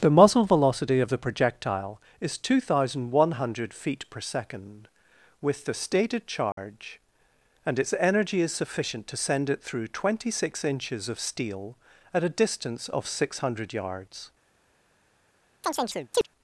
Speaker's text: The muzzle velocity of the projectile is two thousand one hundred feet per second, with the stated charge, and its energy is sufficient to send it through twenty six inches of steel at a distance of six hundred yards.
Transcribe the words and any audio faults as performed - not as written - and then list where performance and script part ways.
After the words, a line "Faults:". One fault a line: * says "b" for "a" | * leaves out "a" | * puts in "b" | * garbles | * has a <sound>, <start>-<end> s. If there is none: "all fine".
The muzzle velocity of the projectile is two thousand one hundred feet per second, with the stated charge, and its energy is sufficient to send it through twenty six inches of steel at a distance of six hundred yards.
Faults:
* has a dropout, 6.5-6.6 s
* has a chirp, 15.6-16.3 s